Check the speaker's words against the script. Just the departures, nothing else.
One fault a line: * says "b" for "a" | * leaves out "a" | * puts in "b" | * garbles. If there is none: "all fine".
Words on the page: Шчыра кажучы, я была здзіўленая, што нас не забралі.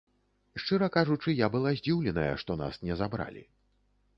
all fine